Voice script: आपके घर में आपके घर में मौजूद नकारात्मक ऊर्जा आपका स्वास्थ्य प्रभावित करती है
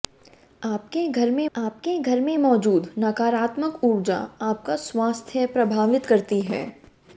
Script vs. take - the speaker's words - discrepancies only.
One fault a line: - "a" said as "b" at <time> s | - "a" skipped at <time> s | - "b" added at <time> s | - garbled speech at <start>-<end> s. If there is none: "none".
none